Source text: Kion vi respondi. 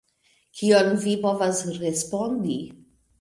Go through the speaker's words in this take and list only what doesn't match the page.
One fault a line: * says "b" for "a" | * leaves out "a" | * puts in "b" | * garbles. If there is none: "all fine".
* puts in "povas"